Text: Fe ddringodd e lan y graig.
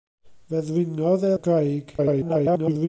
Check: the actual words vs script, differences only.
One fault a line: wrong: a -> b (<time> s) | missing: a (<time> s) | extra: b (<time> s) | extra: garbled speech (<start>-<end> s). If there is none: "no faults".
missing: lan (1.4 s)
extra: garbled speech (2.0-2.9 s)